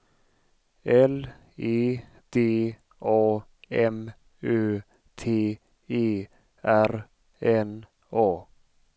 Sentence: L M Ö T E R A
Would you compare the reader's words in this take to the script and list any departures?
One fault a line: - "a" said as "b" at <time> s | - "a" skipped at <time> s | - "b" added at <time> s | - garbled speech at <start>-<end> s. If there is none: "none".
- "E D A" added at 1.6 s
- "N" added at 7.4 s